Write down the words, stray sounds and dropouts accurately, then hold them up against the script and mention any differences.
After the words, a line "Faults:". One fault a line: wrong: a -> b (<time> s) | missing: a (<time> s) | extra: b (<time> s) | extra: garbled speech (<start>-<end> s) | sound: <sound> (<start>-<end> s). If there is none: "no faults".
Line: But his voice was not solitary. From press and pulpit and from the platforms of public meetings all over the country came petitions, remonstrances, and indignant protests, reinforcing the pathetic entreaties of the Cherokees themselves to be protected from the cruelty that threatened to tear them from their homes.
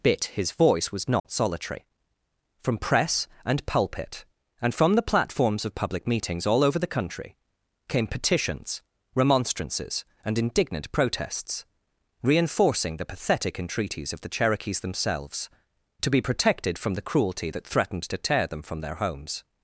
Bit his voice was not solitary. From press and pulpit and from the platforms of public meetings all over the country came petitions, remonstrances, and indignant protests, reinforcing the pathetic entreaties of the Cherokees themselves to be protected from the cruelty that threatened to tear them from their homes.
Faults:
wrong: But -> Bit (0.0 s)
sound: dropout (1.2-1.2 s)